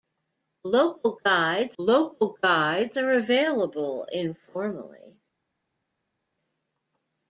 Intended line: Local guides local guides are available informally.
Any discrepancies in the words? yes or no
no